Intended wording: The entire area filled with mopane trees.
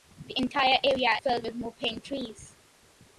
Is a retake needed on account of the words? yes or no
no